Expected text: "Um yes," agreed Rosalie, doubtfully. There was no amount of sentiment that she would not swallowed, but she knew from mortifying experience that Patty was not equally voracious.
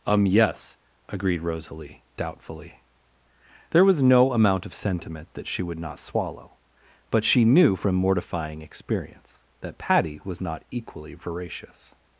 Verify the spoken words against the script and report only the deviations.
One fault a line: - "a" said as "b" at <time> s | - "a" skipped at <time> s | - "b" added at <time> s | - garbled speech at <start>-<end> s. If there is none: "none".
- "swallowed" said as "swallow" at 6.0 s